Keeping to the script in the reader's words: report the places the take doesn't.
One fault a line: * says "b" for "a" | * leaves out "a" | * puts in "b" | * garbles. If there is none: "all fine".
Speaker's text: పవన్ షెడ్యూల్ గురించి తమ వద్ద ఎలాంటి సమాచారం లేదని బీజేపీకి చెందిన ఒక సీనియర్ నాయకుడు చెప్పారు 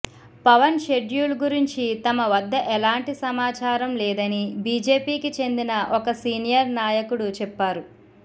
all fine